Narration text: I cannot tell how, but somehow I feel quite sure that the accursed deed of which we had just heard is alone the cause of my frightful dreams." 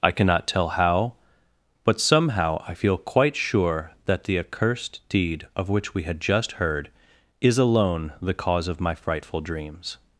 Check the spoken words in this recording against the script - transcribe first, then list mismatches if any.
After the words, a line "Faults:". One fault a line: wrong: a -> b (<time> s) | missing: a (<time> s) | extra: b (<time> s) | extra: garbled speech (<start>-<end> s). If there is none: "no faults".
I cannot tell how, but somehow I feel quite sure that the accursed deed of which we had just heard is alone the cause of my frightful dreams."
Faults:
no faults